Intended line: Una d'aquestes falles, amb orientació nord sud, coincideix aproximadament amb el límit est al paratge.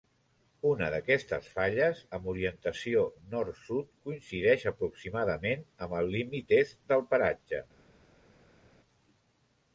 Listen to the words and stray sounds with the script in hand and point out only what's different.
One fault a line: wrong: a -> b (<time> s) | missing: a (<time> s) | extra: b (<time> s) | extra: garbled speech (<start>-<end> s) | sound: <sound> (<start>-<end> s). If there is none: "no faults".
wrong: al -> del (6.9 s)